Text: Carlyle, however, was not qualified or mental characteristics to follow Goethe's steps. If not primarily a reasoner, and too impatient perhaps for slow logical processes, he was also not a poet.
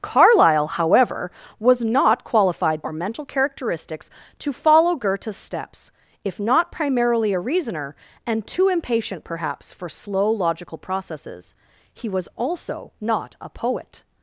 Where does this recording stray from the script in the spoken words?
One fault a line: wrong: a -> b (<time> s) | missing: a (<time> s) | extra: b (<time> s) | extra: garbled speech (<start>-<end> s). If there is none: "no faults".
no faults